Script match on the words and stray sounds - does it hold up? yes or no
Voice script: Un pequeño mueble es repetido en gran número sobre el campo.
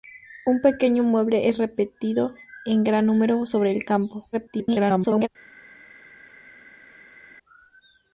no